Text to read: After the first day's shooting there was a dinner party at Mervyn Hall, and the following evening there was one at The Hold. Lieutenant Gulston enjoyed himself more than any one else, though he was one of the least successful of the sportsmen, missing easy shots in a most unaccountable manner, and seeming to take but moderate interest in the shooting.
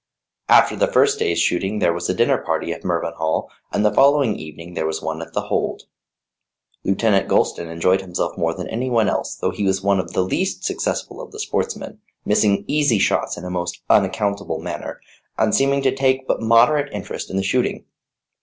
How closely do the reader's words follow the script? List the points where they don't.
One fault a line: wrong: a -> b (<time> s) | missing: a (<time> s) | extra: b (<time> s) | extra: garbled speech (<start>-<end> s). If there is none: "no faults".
no faults